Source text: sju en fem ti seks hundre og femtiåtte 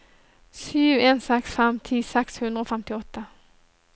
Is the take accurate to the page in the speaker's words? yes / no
no